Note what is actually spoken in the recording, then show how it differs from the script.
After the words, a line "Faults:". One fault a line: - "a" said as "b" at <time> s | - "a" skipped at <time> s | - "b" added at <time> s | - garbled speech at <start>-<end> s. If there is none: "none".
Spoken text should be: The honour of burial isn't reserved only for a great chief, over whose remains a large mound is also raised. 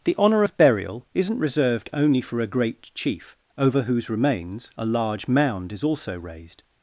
The honour of burial isn't reserved only for a great chief, over whose remains a large mound is also raised.
Faults:
none